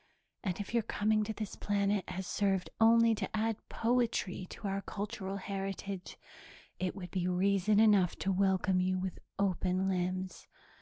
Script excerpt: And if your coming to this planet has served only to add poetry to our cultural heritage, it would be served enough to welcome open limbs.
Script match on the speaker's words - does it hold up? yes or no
no